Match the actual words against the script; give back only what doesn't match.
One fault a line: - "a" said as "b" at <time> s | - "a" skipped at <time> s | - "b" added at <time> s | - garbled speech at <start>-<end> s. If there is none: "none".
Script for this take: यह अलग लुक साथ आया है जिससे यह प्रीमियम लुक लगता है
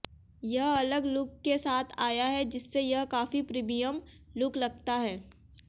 - "के" added at 1.4 s
- "काफी" added at 3.0 s